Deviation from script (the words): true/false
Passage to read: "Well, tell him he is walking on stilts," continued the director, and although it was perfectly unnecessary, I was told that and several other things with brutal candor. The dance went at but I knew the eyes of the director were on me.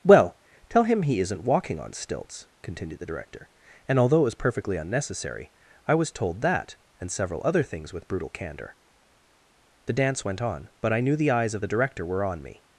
true